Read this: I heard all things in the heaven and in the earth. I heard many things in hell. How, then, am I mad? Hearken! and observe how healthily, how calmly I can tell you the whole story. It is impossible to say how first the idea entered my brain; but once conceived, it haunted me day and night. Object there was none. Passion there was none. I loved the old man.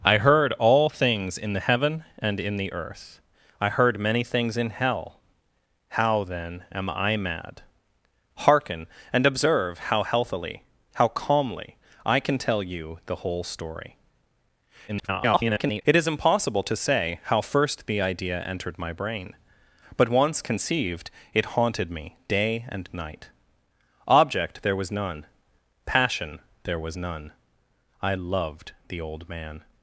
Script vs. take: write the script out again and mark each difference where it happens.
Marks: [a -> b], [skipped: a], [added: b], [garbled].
I heard all things in the heaven and in the earth. I heard many things in hell. How, then, am I mad? Hearken! and observe how healthily, how calmly I can tell you the whole story. [garbled] It is impossible to say how first the idea entered my brain; but once conceived, it haunted me day and night. Object there was none. Passion there was none. I loved the old man.